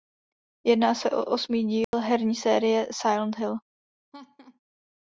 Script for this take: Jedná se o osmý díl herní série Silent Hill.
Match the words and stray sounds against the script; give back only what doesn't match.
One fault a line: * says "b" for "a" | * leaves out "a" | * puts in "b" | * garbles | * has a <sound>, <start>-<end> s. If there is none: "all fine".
* has a dropout, 1.8-1.9 s
* has a laugh, 4.1-4.6 s